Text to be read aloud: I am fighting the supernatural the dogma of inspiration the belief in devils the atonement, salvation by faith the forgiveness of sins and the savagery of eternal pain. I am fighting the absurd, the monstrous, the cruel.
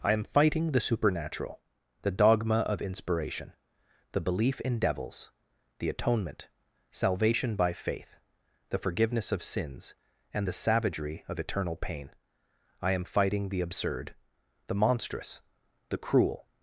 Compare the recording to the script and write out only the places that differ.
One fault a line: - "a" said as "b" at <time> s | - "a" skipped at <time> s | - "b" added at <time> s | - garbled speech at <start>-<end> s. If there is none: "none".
none